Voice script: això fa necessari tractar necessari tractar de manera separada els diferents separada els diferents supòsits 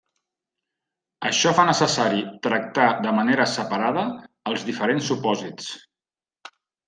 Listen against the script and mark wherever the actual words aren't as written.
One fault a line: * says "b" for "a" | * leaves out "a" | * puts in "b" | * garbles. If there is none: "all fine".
* leaves out "necessari tractar"
* leaves out "separada els diferents"